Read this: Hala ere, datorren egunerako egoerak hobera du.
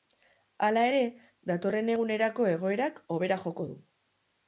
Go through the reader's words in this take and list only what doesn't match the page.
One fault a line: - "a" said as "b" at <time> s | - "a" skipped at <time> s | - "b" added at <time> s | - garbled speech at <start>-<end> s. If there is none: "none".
- "joko" added at 3.5 s